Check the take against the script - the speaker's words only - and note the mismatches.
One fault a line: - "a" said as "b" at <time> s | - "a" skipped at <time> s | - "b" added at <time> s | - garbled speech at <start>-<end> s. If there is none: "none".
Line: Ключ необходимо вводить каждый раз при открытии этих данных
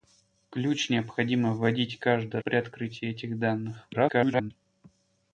- "раз" skipped at 2.4 s
- garbled speech at 3.9-4.5 s